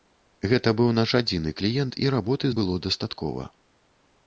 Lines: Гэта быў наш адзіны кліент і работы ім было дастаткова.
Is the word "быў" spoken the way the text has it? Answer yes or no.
yes